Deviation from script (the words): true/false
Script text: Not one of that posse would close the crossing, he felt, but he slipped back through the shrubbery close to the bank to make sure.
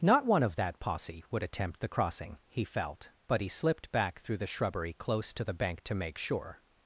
true